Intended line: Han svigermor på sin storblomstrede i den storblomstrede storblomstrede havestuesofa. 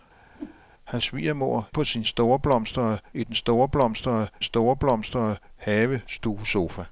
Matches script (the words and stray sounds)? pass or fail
fail